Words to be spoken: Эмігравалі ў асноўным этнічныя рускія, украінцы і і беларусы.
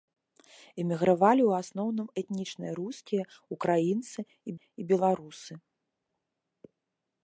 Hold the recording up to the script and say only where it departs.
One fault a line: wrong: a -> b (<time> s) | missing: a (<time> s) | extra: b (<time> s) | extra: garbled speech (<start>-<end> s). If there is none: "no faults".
no faults